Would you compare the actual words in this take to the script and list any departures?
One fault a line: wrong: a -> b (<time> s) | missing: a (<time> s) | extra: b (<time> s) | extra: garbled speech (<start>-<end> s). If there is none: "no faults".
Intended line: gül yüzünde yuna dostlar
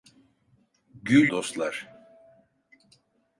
missing: yüzünde yuna (1.3 s)